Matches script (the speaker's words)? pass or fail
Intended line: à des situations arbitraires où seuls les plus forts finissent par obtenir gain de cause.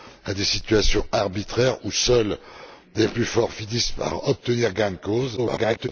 fail